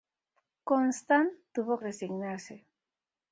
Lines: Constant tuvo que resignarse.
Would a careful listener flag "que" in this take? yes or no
yes